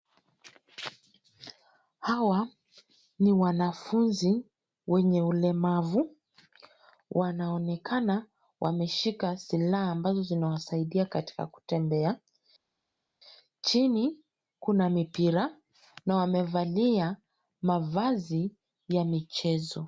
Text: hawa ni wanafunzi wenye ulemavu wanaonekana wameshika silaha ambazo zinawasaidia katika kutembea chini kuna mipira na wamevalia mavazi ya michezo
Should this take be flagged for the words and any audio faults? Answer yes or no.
no